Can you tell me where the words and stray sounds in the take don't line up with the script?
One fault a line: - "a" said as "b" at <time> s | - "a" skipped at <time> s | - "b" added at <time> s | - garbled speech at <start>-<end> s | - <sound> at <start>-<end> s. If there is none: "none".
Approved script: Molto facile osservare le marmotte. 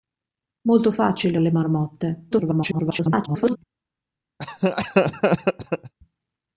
- "osservare" skipped at 1.4 s
- garbled speech at 2.3-3.6 s
- laugh at 4.4-5.9 s